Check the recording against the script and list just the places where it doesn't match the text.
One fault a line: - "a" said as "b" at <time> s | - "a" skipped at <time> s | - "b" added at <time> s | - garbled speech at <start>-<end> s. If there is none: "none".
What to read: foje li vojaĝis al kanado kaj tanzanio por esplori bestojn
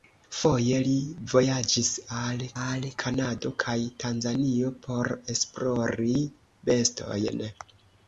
- "al" added at 2.6 s